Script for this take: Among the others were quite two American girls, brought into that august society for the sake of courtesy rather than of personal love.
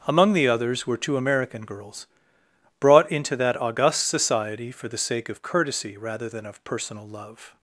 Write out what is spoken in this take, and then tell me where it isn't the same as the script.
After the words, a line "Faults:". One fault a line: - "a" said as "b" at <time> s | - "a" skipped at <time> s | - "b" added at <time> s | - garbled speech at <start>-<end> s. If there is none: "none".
Among the others were two American girls, brought into that august society for the sake of courtesy rather than of personal love.
Faults:
- "quite" skipped at 1.0 s